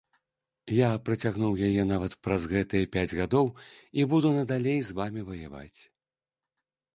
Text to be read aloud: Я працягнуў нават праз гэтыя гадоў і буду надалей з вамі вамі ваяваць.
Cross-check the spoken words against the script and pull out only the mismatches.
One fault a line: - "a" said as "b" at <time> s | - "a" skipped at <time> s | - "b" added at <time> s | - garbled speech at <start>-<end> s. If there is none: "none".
- "яе" added at 1.7 s
- "пяць" added at 3.0 s
- "вамі" skipped at 5.2 s